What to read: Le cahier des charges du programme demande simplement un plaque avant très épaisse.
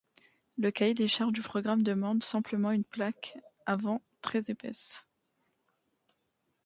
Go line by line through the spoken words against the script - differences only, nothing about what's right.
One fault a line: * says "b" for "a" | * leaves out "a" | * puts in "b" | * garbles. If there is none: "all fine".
* says "une" for "un"